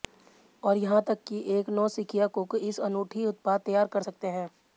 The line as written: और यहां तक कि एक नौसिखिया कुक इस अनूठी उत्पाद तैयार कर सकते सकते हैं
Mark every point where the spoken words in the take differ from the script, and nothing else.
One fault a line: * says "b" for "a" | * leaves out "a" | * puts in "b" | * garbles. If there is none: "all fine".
* leaves out "सकते"